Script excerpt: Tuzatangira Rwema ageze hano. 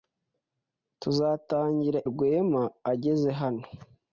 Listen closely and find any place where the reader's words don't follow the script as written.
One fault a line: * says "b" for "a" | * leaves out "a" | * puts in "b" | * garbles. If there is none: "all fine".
all fine